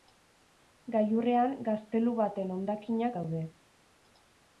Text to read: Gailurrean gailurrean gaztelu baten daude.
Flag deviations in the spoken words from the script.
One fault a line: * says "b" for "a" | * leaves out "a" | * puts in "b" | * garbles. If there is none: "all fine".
* leaves out "gailurrean"
* puts in "hondakinak"